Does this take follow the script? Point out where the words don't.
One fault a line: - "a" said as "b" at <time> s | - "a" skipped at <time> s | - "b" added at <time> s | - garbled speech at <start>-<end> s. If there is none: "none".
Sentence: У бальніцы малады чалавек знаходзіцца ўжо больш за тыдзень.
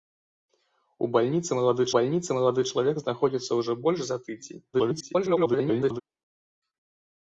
- "бальніцы малады" added at 2.0 s
- garbled speech at 4.7-6.0 s